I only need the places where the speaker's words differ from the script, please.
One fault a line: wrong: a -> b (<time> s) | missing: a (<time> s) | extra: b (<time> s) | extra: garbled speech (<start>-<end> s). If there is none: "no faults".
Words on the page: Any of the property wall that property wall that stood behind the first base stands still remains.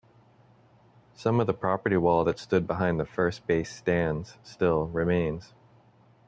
wrong: Any -> Some (1.1 s)
missing: property wall that (2.4 s)